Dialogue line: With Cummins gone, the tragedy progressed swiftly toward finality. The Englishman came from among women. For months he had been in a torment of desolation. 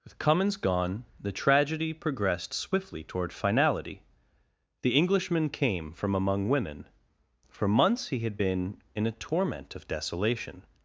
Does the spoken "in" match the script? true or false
true